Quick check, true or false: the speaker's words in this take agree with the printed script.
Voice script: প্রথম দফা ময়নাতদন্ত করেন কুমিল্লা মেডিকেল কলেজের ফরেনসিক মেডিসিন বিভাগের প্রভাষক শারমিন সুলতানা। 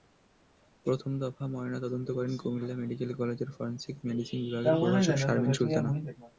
true